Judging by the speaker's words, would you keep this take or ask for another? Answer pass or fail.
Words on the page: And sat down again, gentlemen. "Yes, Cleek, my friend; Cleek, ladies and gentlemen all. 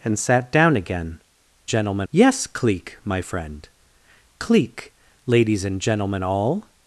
pass